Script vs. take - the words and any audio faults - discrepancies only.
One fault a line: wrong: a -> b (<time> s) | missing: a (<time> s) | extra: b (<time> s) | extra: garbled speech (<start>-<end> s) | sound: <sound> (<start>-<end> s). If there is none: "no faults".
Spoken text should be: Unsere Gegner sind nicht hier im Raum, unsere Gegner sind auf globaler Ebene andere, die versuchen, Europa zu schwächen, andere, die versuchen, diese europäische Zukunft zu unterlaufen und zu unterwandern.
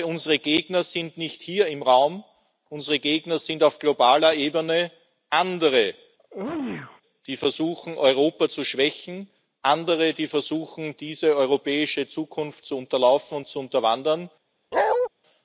sound: sneeze (6.2-7.0 s)
sound: bark (14.7-15.1 s)